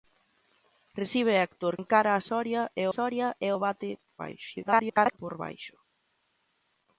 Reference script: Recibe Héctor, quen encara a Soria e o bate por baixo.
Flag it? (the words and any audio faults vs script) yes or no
yes